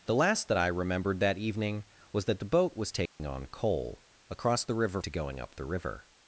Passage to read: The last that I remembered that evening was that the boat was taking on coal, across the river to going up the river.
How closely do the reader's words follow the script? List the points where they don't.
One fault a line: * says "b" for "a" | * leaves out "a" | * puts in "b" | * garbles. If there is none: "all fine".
all fine